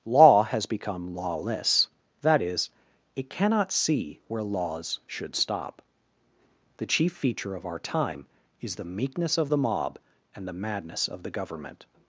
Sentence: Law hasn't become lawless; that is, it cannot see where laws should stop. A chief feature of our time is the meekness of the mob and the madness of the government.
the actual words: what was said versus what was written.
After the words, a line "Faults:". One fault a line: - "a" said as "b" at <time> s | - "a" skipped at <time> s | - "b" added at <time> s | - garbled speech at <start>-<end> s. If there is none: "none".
Law has become lawless; that is, it cannot see where laws should stop. The chief feature of our time is the meekness of the mob and the madness of the government.
Faults:
- "hasn't" said as "has" at 0.4 s
- "A" said as "The" at 6.8 s